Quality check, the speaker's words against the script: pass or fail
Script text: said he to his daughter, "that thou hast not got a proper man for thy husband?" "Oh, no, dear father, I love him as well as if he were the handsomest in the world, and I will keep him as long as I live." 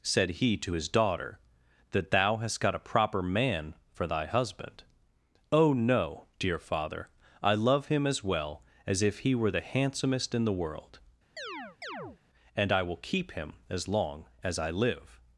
fail